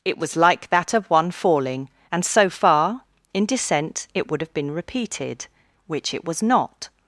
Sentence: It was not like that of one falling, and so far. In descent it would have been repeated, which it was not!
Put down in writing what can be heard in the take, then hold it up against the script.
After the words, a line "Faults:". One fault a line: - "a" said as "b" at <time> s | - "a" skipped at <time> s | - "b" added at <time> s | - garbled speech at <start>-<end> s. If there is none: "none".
It was like that of one falling, and so far. In descent it would have been repeated, which it was not!
Faults:
- "not" skipped at 0.3 s